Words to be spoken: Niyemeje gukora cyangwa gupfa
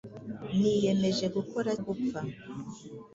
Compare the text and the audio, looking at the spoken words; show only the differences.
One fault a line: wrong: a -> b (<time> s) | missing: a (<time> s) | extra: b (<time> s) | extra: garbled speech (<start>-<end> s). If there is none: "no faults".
missing: cyangwa (1.7 s)